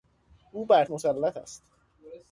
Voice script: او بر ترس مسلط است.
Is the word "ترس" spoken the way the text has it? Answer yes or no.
no